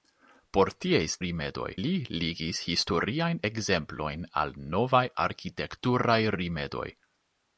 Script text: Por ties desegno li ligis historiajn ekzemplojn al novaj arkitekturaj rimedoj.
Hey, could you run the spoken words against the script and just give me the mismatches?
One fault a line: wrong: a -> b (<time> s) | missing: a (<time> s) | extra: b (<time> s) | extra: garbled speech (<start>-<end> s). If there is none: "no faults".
wrong: desegno -> rimedoj (1.2 s)